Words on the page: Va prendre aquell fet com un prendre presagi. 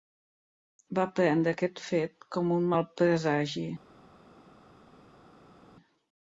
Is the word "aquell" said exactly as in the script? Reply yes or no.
no